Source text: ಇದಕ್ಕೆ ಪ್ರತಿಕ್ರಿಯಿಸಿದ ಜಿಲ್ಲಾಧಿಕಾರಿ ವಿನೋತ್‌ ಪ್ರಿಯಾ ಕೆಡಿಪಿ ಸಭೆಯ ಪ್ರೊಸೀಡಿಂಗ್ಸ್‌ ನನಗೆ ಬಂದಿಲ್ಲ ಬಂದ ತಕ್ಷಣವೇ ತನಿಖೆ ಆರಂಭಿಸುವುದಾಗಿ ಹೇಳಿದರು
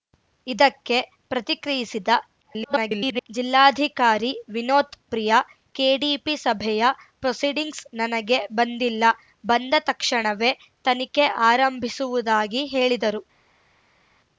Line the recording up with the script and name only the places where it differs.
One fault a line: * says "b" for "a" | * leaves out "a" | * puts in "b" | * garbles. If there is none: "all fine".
* garbles